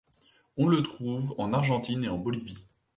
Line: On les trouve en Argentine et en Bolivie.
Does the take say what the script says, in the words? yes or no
no